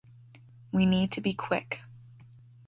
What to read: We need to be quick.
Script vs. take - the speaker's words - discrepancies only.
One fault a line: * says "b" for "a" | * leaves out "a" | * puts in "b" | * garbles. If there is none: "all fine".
all fine